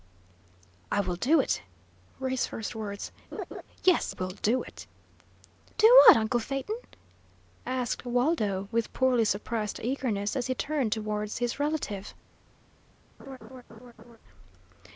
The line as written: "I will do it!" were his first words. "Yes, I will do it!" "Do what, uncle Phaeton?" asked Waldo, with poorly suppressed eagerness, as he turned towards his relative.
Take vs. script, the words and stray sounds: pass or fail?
fail